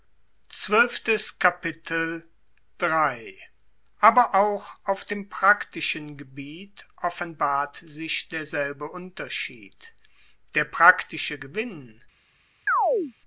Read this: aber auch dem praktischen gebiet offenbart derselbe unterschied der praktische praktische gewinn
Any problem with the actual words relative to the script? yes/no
yes